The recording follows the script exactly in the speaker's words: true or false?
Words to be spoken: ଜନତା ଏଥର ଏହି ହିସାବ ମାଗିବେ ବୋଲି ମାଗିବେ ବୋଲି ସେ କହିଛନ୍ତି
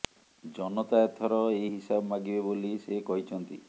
false